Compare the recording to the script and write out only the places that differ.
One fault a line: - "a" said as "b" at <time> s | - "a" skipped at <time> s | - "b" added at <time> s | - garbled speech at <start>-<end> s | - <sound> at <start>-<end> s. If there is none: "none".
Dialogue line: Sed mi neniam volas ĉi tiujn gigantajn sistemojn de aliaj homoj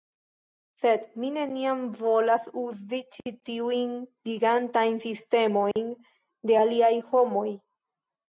- "uzi" added at 2.6 s
- dropout at 5.7-5.8 s